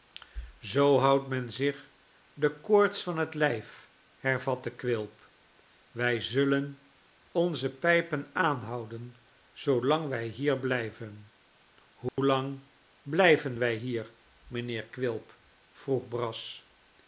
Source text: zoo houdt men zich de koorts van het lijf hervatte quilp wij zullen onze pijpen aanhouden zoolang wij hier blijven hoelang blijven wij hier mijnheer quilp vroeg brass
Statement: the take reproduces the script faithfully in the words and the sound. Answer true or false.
false